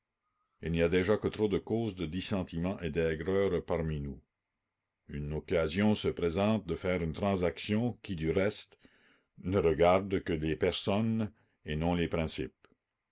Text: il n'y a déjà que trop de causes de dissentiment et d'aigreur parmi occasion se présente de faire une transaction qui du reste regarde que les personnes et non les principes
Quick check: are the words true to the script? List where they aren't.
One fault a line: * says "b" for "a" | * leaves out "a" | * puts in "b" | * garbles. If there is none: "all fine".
* puts in "nous une"
* puts in "ne"